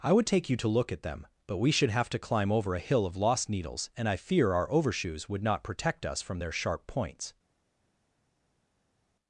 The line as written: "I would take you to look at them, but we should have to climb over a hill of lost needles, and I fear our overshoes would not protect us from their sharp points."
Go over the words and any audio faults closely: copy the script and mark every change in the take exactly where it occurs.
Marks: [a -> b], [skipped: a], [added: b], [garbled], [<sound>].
"I would take you to look at them, but we should have to climb over a hill of lost needles, and I fear our overshoes would not protect us from their sharp points."